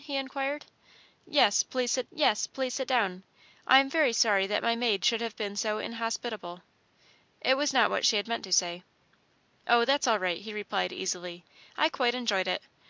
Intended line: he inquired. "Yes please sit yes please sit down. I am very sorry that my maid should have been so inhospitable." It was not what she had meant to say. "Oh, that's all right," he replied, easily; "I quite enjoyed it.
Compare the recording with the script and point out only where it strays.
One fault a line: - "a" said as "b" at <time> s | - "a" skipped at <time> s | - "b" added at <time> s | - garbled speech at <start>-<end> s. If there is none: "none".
none